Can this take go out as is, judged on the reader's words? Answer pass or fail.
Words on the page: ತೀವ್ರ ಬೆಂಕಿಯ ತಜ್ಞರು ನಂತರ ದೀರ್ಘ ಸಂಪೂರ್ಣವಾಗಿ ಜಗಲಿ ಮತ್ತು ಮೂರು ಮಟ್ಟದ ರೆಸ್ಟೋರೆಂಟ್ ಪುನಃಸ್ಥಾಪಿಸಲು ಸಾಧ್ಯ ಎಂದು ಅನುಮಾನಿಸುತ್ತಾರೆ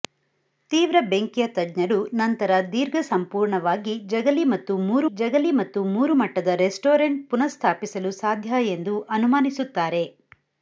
fail